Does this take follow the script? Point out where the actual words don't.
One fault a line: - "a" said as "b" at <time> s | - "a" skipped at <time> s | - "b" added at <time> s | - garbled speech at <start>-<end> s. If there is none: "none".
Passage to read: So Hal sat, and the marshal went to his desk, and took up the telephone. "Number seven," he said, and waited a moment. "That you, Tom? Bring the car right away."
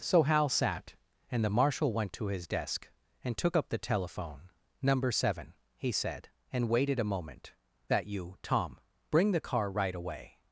none